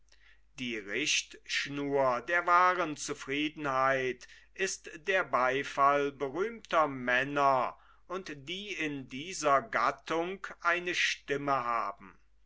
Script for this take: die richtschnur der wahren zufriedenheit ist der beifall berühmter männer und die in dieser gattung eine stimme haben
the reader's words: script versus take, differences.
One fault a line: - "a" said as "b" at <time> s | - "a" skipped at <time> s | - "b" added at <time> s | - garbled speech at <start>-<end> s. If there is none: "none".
none